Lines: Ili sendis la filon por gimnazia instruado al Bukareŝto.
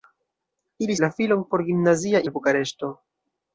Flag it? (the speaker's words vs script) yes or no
yes